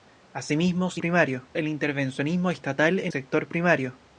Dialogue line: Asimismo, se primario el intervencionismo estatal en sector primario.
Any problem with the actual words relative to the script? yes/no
no